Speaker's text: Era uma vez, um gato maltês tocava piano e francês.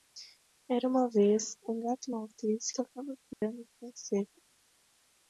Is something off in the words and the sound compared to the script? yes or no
yes